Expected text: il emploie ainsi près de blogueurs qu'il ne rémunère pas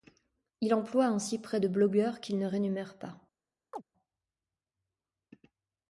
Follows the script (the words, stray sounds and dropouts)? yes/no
no